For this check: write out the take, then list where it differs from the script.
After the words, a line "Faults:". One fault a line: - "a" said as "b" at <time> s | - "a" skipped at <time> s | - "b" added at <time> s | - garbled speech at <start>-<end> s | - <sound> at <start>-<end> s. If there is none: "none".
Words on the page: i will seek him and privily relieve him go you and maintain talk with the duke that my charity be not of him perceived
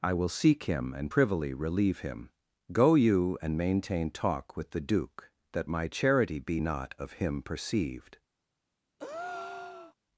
i will seek him and privily relieve him go you and maintain talk with the duke that my charity be not of him perceived
Faults:
- breath at 9.0-9.9 s